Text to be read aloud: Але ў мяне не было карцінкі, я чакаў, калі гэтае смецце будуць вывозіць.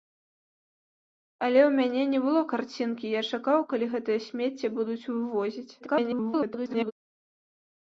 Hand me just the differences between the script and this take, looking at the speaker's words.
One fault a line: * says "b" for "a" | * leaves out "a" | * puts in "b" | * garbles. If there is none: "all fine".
* garbles